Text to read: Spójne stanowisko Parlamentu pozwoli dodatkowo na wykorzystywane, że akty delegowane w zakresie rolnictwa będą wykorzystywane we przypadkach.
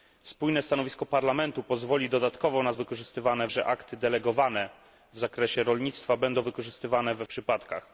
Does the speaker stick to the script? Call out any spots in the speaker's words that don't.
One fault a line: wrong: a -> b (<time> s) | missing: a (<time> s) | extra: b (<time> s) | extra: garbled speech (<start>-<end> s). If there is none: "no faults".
no faults